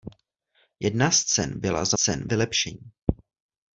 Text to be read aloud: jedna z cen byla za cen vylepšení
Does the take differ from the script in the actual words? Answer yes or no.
no